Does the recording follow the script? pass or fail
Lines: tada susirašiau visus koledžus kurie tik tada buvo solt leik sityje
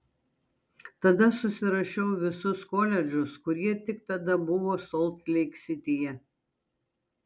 pass